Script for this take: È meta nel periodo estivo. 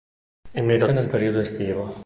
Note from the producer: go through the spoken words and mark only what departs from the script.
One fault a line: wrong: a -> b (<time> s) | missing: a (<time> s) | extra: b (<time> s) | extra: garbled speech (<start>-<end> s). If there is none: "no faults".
no faults